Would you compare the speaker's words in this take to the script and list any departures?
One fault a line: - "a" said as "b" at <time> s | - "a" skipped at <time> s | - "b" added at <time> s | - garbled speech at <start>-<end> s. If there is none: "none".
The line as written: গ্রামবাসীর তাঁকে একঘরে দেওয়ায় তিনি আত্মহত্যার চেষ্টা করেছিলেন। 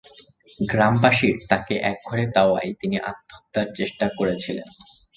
none